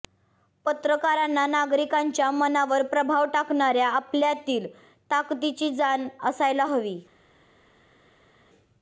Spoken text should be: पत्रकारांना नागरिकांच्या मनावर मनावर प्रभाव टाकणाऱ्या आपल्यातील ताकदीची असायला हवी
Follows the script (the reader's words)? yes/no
no